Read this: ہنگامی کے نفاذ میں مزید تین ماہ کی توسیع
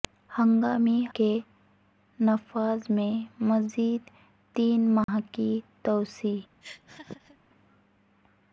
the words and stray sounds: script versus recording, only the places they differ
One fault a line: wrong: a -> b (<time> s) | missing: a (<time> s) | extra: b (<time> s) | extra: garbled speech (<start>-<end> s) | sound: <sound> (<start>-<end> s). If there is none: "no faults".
sound: dropout (5.0-5.1 s)
sound: laugh (6.6-7.4 s)